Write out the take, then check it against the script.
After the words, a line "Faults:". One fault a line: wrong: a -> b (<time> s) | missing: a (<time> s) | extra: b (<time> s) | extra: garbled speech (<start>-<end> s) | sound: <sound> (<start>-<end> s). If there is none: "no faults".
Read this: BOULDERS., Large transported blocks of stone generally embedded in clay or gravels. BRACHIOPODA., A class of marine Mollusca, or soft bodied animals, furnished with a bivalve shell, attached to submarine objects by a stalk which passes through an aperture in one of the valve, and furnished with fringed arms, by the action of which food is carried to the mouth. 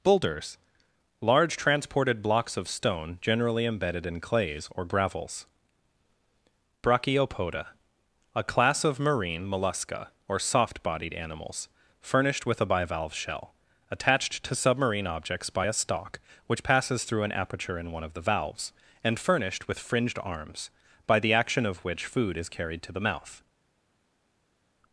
BOULDERS., Large transported blocks of stone generally embedded in clays or gravels. BRACHIOPODA., A class of marine Mollusca, or soft bodied animals, furnished with a bivalve shell, attached to submarine objects by a stalk which passes through an aperture in one of the valves, and furnished with fringed arms, by the action of which food is carried to the mouth.
Faults:
wrong: clay -> clays (4.2 s)
wrong: valve -> valves (18.2 s)